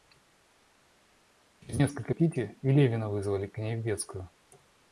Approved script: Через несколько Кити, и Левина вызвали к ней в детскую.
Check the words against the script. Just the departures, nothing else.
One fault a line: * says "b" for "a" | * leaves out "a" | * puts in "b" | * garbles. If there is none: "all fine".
all fine